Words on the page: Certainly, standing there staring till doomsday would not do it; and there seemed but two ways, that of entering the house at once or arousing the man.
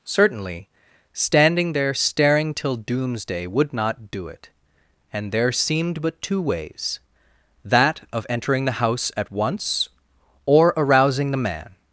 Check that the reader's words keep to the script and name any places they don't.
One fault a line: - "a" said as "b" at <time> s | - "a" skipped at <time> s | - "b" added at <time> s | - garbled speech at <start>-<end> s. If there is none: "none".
none